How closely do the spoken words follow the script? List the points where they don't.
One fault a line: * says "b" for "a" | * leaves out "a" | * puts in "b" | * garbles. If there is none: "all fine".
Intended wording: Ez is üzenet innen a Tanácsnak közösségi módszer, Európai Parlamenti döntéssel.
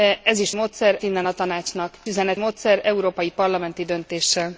* says "módszer" for "üzenet"
* says "üzenet" for "közösségi"